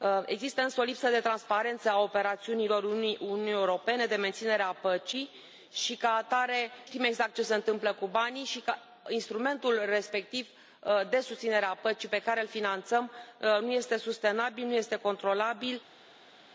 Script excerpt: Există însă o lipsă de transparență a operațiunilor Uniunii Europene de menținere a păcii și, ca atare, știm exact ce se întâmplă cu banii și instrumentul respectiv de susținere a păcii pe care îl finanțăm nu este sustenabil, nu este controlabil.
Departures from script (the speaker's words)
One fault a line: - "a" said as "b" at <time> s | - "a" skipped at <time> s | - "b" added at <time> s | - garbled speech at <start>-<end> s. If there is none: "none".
none